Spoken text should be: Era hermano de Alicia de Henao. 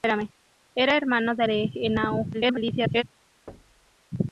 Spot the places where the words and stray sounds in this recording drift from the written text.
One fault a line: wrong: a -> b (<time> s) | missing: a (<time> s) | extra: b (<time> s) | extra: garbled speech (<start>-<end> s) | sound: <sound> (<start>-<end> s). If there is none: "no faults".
missing: Alicia (1.4 s)
extra: garbled speech (2.3-3.0 s)
sound: thud (3.5-4.0 s)